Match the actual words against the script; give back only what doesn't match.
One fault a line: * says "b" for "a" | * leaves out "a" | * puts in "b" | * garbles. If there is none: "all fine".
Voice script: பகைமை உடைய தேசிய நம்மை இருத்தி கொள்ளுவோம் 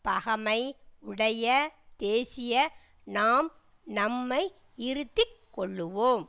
* puts in "நாம்"